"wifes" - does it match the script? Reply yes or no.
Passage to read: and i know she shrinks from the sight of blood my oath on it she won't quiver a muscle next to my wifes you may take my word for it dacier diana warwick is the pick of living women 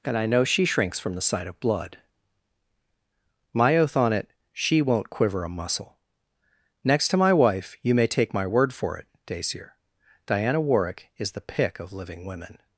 no